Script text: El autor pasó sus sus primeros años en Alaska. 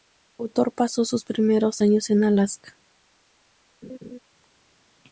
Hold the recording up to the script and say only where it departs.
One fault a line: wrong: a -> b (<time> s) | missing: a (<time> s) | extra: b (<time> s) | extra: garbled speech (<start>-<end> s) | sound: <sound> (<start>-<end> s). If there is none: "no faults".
missing: sus (1.2 s)
sound: laugh (3.8-4.2 s)